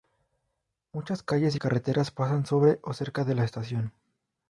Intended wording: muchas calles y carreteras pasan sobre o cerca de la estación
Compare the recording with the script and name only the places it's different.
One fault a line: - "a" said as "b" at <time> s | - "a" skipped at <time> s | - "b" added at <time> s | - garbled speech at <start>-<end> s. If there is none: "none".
none